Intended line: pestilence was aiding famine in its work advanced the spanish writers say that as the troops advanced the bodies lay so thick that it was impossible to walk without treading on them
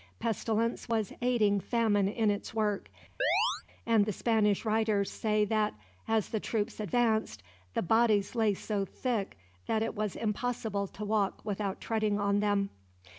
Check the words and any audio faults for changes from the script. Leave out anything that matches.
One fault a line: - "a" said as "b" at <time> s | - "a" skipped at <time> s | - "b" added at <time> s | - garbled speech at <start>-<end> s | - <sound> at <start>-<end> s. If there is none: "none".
- chirp at 3.2-3.6 s
- "advanced" said as "and" at 3.9 s